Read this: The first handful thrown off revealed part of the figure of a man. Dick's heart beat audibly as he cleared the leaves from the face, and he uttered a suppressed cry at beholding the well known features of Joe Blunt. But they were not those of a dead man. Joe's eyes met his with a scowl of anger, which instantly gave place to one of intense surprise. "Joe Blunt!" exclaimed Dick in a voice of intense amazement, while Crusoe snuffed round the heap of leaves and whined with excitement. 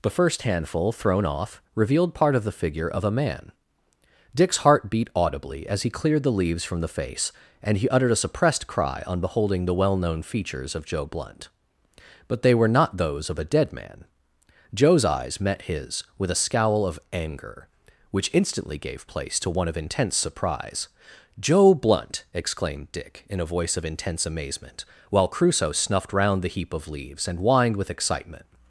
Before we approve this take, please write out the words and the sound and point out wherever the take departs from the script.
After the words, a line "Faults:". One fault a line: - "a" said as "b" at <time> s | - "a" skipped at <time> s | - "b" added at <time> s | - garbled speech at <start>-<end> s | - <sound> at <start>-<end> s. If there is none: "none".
The first handful thrown off revealed part of the figure of a man. Dick's heart beat audibly as he cleared the leaves from the face, and he uttered a suppressed cry on beholding the well known features of Joe Blunt. But they were not those of a dead man. Joe's eyes met his with a scowl of anger, which instantly gave place to one of intense surprise. "Joe Blunt!" exclaimed Dick in a voice of intense amazement, while Crusoe snuffed round the heap of leaves and whined with excitement.
Faults:
- "at" said as "on" at 9.1 s